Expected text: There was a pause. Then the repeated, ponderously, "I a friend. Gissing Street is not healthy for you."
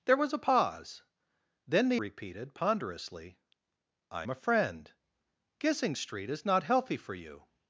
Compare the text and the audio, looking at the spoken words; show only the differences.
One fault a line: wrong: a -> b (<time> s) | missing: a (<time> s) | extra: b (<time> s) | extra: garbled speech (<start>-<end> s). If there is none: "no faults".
no faults